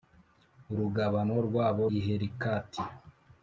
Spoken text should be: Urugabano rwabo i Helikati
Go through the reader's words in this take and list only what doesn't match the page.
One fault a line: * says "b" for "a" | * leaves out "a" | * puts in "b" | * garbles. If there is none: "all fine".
all fine